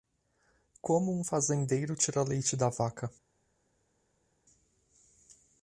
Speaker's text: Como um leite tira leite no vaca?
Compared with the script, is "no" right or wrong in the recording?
wrong